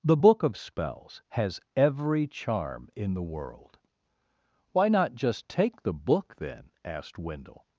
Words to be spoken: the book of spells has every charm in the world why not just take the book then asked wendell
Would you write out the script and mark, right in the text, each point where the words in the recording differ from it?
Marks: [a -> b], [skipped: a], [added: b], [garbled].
the book of spells has every charm in the world why not just take the book then asked wendell